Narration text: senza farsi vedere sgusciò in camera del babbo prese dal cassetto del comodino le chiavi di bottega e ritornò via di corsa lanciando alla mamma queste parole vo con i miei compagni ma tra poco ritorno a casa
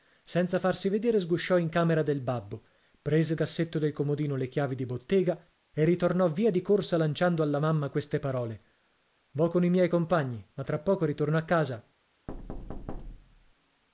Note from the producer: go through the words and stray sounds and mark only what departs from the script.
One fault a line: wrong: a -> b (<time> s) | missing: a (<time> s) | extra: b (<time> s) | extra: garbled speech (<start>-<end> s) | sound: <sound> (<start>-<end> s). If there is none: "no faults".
missing: dal (3.4 s)
sound: thud (12.3-13.5 s)